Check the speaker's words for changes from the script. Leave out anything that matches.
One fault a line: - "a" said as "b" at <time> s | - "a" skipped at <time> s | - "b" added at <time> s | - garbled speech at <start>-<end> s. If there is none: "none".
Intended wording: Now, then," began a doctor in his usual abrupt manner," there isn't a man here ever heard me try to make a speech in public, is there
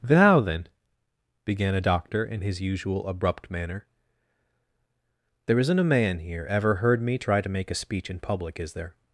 none